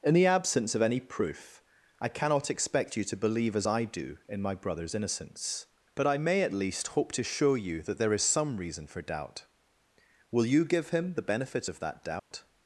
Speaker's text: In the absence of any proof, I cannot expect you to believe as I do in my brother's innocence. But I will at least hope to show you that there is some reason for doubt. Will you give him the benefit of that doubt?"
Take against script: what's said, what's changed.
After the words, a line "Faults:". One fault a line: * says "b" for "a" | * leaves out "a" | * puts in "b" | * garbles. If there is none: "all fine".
In the absence of any proof, I cannot expect you to believe as I do in my brother's innocence. But I may at least hope to show you that there is some reason for doubt. Will you give him the benefit of that doubt?"
Faults:
* says "may" for "will"